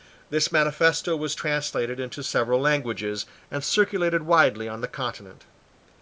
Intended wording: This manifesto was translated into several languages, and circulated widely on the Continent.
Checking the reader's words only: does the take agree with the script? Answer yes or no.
yes